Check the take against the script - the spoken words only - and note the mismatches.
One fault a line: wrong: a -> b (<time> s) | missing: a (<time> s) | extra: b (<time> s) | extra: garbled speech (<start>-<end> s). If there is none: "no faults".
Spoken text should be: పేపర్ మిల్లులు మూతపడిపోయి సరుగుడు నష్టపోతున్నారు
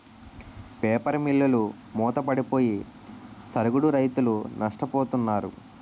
extra: రైతులు (4.0 s)